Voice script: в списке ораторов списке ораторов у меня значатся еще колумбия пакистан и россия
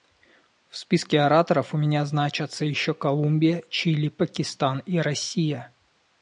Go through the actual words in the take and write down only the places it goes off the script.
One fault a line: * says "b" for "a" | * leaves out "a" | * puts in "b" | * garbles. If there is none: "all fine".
* leaves out "списке ораторов"
* puts in "чили"